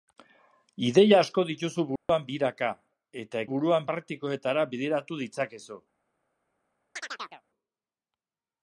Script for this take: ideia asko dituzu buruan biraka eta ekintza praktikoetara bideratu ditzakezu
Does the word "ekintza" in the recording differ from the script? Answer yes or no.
yes